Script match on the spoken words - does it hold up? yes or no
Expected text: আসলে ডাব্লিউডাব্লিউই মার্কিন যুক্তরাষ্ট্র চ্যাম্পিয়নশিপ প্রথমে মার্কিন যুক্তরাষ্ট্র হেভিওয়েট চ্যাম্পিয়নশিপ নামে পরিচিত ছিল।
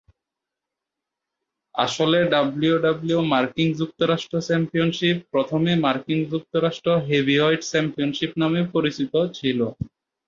yes